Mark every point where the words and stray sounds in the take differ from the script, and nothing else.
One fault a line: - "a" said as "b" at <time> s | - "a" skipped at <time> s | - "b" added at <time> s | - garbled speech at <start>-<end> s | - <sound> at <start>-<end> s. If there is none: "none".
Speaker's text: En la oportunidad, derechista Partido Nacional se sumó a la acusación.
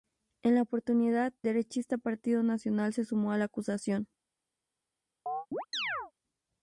- chirp at 5.3-6.1 s